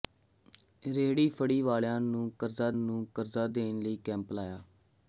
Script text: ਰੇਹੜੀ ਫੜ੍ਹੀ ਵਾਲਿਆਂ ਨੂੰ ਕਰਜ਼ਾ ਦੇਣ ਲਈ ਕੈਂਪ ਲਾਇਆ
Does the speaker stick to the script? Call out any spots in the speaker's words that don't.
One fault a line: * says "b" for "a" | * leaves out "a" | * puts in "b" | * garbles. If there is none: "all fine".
* puts in "ਨੂੰ ਕਰਜ਼ਾ"